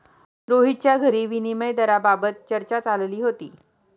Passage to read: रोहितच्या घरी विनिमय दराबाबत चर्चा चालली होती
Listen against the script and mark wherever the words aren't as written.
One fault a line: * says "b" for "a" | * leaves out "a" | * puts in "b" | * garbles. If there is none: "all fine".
all fine